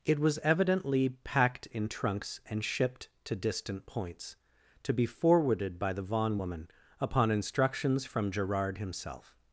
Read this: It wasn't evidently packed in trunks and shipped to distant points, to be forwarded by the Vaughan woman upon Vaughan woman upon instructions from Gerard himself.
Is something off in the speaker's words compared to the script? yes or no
yes